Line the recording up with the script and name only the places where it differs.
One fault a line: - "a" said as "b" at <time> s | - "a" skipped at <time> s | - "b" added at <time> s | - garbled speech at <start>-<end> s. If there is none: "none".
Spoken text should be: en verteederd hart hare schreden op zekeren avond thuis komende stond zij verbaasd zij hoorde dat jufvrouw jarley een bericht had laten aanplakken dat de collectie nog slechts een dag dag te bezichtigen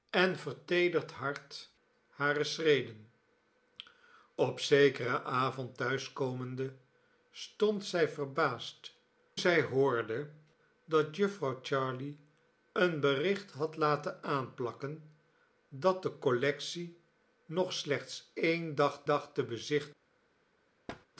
none